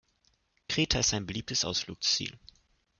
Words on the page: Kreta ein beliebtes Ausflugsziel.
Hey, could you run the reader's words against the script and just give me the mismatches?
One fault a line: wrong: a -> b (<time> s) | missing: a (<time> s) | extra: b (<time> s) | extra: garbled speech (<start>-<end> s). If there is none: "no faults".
extra: ist (1.0 s)